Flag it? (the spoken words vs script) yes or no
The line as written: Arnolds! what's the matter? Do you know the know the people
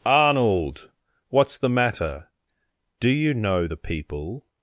yes